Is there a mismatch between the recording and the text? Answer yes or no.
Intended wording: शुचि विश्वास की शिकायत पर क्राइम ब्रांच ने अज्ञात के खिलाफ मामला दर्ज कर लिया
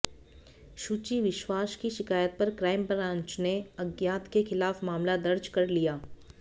no